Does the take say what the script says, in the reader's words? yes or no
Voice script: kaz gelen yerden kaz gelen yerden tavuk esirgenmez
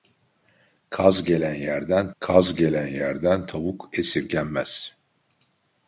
yes